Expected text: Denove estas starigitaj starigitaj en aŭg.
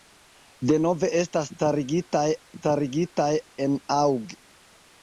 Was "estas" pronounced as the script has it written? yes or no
yes